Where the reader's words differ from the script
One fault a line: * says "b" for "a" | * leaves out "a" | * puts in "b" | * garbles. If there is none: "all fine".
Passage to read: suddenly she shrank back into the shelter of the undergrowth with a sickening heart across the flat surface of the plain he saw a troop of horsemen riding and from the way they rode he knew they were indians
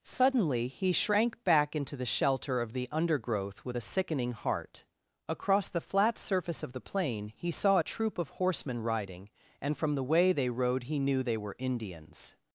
* says "he" for "she"